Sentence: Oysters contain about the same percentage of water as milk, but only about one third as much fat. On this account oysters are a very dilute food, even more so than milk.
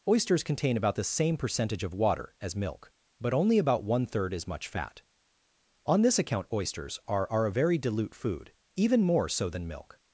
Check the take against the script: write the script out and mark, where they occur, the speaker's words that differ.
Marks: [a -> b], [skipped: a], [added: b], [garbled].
Oysters contain about the same percentage of water as milk, but only about one third as much fat. On this account oysters are [added: are] a very dilute food, even more so than milk.